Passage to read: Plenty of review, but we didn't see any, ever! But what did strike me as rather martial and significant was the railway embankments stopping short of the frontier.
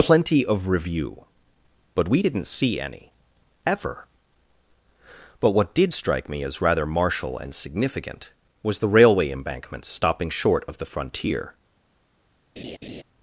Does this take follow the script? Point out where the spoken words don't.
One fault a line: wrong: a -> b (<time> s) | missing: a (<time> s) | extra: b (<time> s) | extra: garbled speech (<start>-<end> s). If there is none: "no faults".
no faults